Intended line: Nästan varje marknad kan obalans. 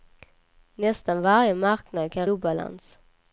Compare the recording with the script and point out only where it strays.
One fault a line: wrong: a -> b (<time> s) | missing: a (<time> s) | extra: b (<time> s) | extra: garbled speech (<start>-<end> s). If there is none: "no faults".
no faults